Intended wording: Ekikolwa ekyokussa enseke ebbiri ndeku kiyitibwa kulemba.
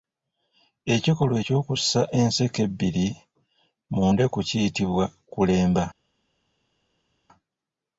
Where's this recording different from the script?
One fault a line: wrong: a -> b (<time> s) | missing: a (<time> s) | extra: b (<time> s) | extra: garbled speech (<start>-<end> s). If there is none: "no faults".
extra: mu (3.9 s)